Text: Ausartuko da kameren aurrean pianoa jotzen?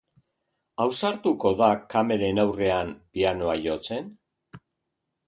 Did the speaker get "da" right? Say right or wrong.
right